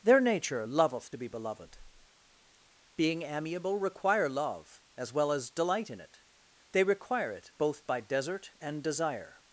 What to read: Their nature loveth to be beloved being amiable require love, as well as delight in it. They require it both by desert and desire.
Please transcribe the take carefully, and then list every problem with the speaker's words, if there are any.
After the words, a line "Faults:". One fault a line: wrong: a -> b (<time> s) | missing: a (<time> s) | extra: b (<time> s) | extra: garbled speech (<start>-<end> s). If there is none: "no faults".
Their nature loveth to be beloved being amiable require love, as well as delight in it. They require it both by desert and desire.
Faults:
no faults